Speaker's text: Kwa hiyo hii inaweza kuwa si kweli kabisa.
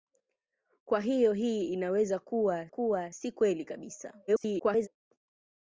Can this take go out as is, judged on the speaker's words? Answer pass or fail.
fail